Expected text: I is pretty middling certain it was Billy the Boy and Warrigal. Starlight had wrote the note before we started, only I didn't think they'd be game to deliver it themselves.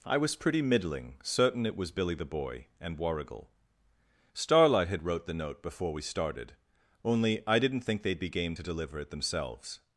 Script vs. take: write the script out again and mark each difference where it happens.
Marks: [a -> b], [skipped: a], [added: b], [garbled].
I [is -> was] pretty middling certain it was Billy the Boy and Warrigal. Starlight had wrote the note before we started, only I didn't think they'd be game to deliver it themselves.